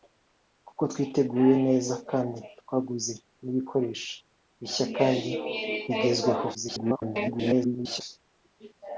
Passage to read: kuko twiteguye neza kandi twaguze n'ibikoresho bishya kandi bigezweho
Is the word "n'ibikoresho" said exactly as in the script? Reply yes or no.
yes